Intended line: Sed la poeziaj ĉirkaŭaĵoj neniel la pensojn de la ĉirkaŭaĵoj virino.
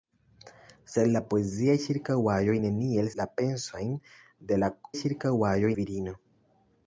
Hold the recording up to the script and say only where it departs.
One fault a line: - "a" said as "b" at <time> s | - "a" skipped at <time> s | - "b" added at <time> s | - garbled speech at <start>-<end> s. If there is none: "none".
none